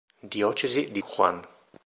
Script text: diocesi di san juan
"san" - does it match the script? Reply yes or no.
no